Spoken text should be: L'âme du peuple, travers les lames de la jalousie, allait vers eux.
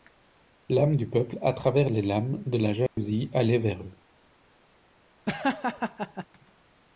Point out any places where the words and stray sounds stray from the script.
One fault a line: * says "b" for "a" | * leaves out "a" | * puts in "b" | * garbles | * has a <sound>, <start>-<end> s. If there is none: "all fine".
* puts in "à"
* has a dropout, 2.9-3.0 s
* has a laugh, 5.3-6.3 s